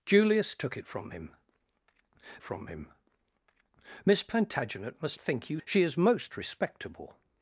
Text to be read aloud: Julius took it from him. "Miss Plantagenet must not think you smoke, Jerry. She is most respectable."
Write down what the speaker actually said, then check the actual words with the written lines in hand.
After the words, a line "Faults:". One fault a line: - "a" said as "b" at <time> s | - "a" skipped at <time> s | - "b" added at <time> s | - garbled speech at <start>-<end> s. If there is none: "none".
Julius took it from him from him. "Miss Plantagenet must think you. She is most respectable."
Faults:
- "from him" added at 2.4 s
- "not" skipped at 5.2 s
- "smoke Jerry" skipped at 5.6 s